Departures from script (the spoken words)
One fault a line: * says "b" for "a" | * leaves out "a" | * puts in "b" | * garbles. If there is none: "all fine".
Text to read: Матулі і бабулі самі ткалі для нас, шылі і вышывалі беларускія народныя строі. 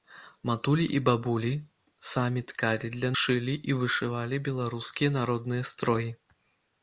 * leaves out "нас"